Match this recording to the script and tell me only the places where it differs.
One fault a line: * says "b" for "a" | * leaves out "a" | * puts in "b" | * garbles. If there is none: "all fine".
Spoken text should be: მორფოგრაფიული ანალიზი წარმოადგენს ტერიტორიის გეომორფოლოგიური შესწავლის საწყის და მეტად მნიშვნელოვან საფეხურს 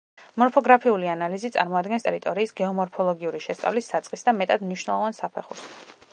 all fine